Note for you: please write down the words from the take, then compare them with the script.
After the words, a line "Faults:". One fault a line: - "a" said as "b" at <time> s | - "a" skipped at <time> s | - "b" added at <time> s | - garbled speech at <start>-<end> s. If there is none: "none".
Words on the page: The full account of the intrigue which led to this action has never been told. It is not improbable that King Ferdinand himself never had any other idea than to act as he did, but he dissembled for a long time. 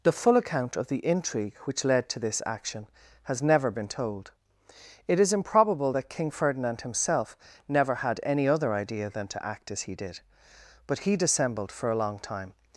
The full account of the intrigue which led to this action has never been told. It is improbable that King Ferdinand himself never had any other idea than to act as he did, but he dissembled for a long time.
Faults:
- "not" skipped at 5.3 s